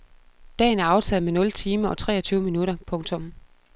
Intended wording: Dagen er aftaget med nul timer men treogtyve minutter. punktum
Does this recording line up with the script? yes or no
no